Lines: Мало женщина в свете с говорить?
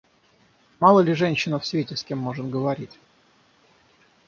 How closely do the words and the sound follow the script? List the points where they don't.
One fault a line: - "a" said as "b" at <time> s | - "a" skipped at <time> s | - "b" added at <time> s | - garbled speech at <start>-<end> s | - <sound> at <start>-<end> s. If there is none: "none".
- "ли" added at 1.0 s
- "кем может" added at 2.0 s